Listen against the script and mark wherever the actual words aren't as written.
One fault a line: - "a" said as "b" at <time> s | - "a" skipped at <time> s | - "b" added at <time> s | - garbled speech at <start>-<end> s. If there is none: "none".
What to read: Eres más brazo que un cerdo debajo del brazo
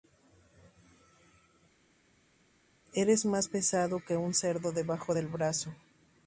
- "brazo" said as "pesado" at 3.4 s